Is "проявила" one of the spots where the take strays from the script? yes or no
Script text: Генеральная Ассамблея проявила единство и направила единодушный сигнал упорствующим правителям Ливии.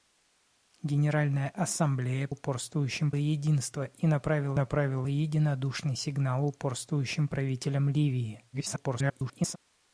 yes